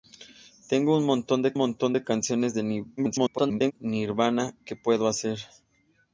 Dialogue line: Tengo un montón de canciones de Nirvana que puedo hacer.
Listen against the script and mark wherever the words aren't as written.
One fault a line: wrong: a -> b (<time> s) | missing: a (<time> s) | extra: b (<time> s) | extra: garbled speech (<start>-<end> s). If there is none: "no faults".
extra: montón de (1.6 s)
extra: garbled speech (3.0-3.7 s)